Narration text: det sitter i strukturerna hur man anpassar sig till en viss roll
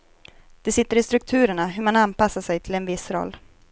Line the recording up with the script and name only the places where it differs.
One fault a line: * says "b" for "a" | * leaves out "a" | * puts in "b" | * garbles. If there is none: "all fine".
all fine